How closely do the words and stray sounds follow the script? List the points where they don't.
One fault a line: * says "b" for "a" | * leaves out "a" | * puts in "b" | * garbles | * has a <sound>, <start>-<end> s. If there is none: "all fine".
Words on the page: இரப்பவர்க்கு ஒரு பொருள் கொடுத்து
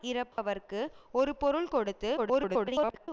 * has a dropout, 0.3-0.4 s
* garbles